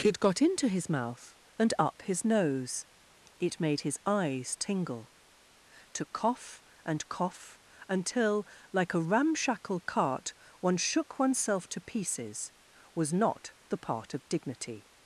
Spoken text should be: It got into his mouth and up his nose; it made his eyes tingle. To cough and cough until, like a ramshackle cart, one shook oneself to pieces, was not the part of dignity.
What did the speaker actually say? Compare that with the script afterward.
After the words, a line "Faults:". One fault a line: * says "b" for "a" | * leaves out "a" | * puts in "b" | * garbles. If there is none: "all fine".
It got into his mouth and up his nose; it made his eyes tingle. To cough and cough until, like a ramshackle cart, one shook oneself to pieces, was not the part of dignity.
Faults:
all fine